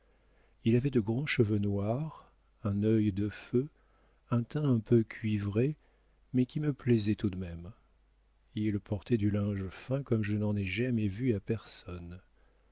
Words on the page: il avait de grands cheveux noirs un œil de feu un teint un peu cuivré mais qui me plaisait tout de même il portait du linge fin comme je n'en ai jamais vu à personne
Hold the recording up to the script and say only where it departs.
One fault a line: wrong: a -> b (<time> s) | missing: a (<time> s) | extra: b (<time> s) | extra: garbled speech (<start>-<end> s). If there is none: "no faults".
no faults